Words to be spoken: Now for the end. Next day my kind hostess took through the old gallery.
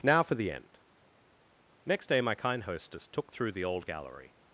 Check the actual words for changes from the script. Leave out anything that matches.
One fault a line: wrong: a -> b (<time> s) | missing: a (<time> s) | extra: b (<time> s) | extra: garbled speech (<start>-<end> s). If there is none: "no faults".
no faults